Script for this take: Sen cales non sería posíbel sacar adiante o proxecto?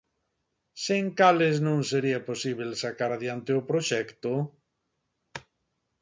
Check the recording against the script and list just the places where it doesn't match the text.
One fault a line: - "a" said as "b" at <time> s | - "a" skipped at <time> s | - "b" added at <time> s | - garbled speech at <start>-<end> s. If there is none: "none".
none